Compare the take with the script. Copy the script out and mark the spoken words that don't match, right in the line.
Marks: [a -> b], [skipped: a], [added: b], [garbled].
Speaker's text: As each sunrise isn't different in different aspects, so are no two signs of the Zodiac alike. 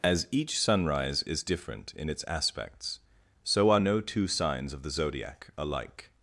As each sunrise [isn't -> is] different in [different -> its] aspects, so are no two signs of the Zodiac alike.